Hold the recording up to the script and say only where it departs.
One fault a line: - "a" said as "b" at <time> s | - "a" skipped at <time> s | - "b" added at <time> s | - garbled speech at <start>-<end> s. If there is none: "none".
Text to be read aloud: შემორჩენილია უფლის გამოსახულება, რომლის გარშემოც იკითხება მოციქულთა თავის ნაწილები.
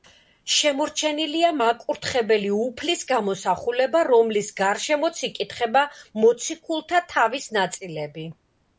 - "მაკურთხებელი" added at 1.6 s